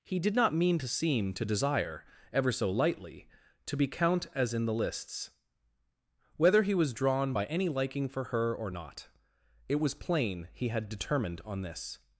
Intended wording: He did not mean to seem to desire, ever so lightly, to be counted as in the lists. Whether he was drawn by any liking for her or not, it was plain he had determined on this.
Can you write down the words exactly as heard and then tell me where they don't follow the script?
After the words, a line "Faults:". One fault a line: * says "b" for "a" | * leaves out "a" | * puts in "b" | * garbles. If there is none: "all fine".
He did not mean to seem to desire, ever so lightly, to be count as in the lists. Whether he was drawn by any liking for her or not, it was plain he had determined on this.
Faults:
* says "count" for "counted"